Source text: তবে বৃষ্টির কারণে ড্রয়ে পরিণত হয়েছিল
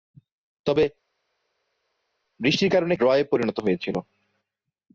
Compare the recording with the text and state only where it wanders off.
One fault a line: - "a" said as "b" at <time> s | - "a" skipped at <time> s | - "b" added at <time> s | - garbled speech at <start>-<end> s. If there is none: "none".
none